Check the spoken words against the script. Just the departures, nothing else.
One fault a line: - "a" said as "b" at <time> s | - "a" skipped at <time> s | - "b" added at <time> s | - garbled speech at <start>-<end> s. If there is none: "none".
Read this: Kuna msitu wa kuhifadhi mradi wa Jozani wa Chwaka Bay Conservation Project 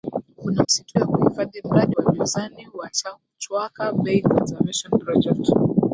none